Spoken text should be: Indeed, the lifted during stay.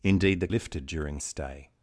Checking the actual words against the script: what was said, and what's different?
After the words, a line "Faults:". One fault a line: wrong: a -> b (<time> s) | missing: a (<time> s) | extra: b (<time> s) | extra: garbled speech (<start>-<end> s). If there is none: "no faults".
Indeed, the lifted during stay.
Faults:
no faults